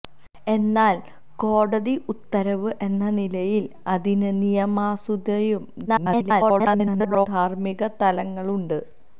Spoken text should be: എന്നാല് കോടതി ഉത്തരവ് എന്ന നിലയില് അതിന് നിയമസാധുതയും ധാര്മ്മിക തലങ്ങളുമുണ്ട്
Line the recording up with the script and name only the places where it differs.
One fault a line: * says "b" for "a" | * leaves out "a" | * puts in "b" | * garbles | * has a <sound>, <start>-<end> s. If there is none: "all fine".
* garbles